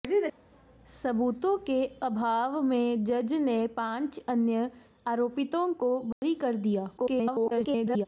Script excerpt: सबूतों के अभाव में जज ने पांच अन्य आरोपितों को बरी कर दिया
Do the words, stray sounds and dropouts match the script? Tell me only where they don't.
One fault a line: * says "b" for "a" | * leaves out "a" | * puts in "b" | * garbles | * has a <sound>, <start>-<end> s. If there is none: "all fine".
* has a dropout, 6.1-6.2 s
* garbles